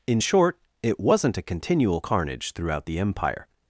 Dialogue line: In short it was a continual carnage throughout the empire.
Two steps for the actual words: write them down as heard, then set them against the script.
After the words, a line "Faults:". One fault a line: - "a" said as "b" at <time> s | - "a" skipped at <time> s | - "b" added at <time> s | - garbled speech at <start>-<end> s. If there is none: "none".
In short it wasn't a continual carnage throughout the empire.
Faults:
- "was" said as "wasn't" at 1.0 s